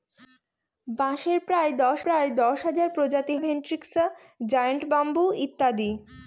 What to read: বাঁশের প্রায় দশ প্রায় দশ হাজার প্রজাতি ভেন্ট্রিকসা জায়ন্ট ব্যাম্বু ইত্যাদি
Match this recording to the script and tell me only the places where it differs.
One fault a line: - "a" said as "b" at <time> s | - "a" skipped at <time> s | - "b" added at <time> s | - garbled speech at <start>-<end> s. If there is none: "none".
none